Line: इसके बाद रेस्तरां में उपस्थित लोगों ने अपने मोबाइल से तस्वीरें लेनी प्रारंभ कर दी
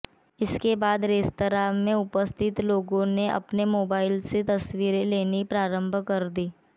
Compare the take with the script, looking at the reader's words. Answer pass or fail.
pass